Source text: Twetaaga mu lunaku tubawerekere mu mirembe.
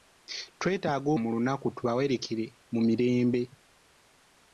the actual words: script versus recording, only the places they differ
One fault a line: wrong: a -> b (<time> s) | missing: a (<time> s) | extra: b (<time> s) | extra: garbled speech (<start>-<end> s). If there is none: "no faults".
no faults